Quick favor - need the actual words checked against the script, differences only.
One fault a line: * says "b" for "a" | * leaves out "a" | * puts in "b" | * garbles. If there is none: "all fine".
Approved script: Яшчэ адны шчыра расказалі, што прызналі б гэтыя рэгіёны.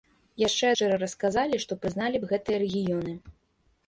* leaves out "адны"